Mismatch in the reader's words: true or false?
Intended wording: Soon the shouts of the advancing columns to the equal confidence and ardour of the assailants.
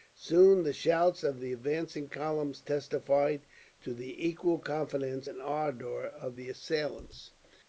true